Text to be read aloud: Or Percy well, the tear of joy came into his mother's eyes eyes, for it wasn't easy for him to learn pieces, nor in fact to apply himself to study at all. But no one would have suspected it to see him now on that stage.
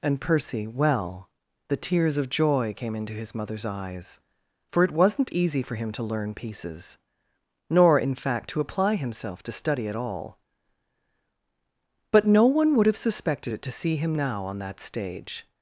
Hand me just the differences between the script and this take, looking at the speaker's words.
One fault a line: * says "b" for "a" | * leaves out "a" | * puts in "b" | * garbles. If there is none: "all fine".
* says "And" for "Or"
* says "tears" for "tear"
* leaves out "eyes"